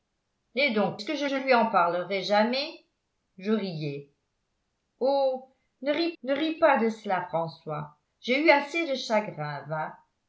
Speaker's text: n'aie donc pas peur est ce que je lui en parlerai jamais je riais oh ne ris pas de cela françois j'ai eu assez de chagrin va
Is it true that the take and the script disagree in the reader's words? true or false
true